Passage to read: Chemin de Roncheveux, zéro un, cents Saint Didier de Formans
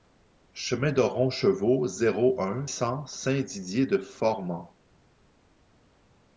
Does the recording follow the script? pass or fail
pass